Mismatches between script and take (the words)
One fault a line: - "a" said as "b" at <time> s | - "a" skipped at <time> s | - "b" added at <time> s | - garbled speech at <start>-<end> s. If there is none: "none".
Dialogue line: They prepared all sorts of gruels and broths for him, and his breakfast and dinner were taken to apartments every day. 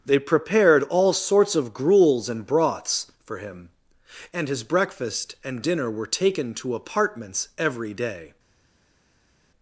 none